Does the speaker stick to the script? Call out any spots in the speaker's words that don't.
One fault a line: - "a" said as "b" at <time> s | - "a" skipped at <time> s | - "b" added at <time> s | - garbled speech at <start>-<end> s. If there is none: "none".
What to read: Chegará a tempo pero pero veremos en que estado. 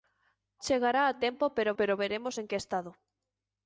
none